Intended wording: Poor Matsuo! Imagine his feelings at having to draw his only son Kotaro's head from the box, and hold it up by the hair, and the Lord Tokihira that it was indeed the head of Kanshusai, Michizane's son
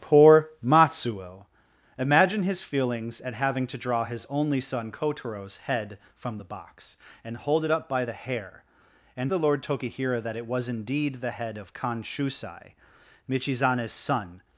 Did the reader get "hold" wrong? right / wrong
right